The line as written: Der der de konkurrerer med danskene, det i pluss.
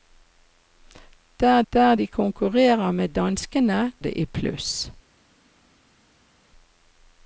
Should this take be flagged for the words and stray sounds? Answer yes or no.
no